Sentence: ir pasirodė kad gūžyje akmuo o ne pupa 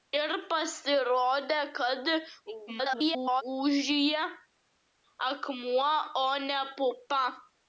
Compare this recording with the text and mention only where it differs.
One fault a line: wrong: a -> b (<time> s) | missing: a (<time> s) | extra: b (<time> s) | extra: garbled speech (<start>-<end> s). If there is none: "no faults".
extra: garbled speech (2.7-3.4 s)